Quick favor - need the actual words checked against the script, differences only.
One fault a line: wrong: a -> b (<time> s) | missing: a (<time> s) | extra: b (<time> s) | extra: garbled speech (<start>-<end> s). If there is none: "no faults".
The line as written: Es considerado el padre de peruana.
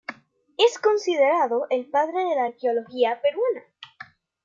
extra: la arqueología (2.4 s)